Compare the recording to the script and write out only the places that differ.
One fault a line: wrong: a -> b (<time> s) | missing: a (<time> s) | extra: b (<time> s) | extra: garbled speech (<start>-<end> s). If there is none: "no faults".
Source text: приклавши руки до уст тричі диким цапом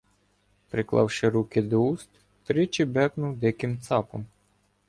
extra: бекнув (2.9 s)